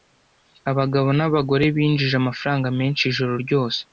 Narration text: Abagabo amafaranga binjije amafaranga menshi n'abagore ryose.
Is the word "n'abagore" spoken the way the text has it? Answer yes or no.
no